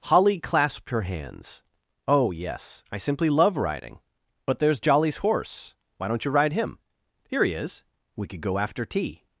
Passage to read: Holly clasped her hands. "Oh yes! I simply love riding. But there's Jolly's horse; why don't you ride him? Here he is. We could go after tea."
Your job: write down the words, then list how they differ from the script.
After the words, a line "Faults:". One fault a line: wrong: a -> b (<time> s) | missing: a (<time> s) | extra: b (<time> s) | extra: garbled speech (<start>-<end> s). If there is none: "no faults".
Holly clasped her hands. "Oh yes! I simply love riding. But there's Jolly's horse; why don't you ride him? Here he is. We could go after tea."
Faults:
no faults